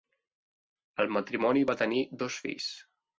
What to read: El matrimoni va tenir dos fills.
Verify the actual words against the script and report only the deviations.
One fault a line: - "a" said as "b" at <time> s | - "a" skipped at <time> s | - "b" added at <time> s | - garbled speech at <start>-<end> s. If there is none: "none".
none